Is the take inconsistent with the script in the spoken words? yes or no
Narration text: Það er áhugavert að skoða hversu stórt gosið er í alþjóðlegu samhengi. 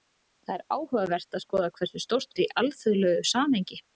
yes